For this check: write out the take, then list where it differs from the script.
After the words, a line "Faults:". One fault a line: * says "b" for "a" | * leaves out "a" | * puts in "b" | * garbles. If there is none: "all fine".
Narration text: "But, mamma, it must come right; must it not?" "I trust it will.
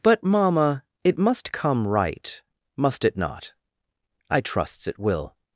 "But, mamma, it must come right; must it not?" "I trusts it will.
Faults:
* says "trusts" for "trust"